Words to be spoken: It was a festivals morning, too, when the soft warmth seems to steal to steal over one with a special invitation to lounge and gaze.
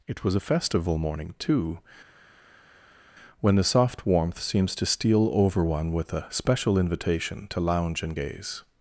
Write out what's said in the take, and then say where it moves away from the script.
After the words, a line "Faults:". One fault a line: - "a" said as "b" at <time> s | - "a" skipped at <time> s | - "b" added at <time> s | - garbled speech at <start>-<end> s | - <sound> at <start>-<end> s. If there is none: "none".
It was a festival morning, too, when the soft warmth seems to steal over one with a special invitation to lounge and gaze.
Faults:
- "festivals" said as "festival" at 0.4 s
- "to steal" skipped at 5.3 s